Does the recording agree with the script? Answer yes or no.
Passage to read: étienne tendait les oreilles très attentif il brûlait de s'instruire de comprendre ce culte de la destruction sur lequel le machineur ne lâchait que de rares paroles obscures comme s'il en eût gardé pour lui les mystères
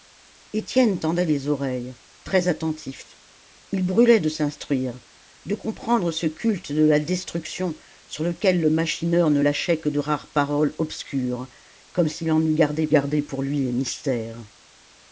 no